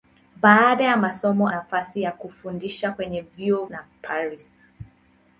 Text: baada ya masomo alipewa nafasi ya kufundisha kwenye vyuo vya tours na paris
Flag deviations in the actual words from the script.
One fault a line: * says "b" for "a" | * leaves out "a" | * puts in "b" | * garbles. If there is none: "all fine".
* leaves out "alipewa"
* leaves out "vya tours"